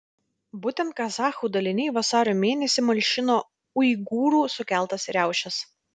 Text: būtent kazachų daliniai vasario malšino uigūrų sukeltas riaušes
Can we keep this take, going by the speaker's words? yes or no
no